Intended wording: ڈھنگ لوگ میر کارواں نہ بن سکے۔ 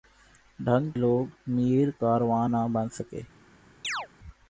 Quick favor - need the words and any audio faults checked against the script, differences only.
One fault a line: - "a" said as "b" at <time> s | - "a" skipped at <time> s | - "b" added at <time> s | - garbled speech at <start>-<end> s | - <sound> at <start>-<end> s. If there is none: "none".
- chirp at 3.8-4.1 s